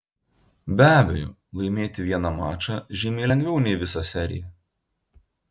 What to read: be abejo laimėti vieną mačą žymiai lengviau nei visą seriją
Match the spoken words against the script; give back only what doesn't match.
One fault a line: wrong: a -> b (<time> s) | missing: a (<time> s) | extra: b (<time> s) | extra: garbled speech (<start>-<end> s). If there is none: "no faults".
no faults